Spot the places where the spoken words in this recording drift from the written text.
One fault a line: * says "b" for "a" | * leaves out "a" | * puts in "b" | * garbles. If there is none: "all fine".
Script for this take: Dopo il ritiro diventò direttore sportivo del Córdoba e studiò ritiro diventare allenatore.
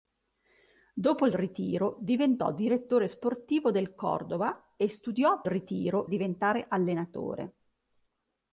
all fine